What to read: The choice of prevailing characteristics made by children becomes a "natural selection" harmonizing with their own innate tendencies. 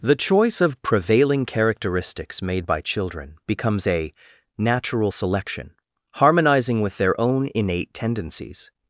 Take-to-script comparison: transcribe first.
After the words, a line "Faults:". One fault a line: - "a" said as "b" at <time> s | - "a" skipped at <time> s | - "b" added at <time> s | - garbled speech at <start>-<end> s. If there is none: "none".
The choice of prevailing characteristics made by children becomes a "natural selection" harmonizing with their own innate tendencies.
Faults:
none